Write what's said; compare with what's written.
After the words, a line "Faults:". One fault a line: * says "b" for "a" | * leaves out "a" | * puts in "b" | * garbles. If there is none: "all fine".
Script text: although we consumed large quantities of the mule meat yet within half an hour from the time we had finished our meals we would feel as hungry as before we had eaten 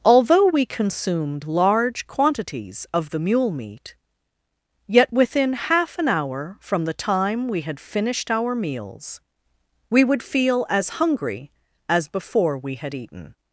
although we consumed large quantities of the mule meat yet within half an hour from the time we had finished our meals we would feel as hungry as before we had eaten
Faults:
all fine